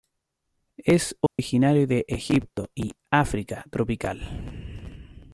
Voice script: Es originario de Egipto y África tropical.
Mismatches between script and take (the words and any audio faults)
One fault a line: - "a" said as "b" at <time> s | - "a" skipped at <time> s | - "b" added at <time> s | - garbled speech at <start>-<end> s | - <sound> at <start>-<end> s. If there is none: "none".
- dropout at 1.3-1.4 s